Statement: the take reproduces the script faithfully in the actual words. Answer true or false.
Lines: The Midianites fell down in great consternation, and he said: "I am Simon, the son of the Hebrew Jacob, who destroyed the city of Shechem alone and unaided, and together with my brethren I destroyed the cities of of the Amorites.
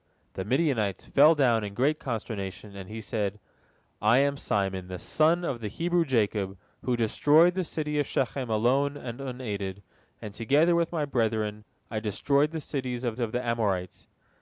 true